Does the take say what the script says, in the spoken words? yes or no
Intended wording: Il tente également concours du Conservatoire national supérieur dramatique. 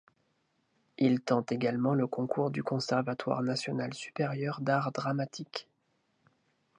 no